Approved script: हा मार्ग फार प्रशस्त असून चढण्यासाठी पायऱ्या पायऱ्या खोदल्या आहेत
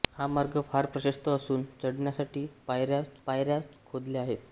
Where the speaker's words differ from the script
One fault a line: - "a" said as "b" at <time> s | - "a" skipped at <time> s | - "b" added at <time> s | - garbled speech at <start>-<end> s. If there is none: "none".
none